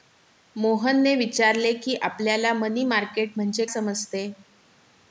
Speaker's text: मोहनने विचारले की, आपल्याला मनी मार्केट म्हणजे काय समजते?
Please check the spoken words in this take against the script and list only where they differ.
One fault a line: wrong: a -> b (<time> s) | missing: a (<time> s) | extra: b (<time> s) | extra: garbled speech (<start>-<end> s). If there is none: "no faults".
missing: काय (3.6 s)